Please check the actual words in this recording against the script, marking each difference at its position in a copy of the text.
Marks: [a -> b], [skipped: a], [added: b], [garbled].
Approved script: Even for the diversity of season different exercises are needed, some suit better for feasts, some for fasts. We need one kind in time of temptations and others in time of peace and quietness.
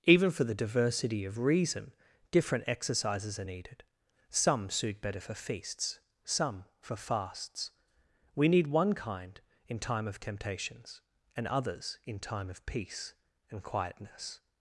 Even for the diversity of [season -> reason] different exercises are needed, some suit better for feasts, some for fasts. We need one kind in time of temptations and others in time of peace and quietness.